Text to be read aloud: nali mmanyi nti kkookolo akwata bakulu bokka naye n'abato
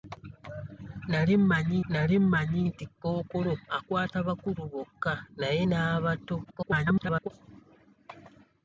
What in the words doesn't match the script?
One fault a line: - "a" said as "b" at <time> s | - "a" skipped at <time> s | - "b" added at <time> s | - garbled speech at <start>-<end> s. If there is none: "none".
- "nali mmanyi" added at 1.9 s
- garbled speech at 6.4-7.3 s